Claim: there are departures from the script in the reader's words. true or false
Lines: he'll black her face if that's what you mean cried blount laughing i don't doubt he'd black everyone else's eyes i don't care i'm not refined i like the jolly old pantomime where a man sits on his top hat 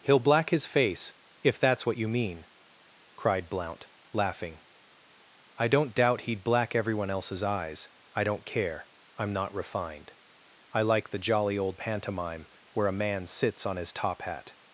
true